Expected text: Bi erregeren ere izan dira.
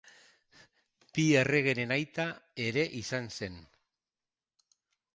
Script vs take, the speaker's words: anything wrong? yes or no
yes